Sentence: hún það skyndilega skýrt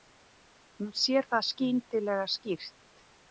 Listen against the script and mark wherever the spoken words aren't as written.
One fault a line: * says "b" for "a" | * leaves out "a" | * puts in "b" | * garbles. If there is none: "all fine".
* puts in "sér"